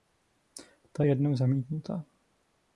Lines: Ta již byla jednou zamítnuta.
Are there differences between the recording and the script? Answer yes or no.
yes